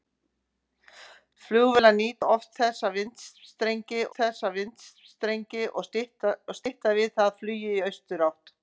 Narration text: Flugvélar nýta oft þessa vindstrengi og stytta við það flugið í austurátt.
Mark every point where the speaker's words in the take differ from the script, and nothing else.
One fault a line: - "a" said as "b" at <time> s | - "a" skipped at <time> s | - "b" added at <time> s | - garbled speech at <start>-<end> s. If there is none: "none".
- "þessa vindstrengi" added at 4.2 s